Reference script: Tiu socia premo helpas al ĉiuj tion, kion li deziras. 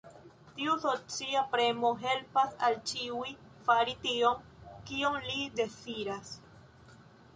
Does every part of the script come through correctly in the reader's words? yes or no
no